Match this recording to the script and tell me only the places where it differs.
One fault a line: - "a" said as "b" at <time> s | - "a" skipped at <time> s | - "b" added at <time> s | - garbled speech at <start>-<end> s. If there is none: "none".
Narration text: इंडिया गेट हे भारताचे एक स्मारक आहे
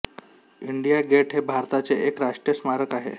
- "राष्ट्रीय" added at 2.2 s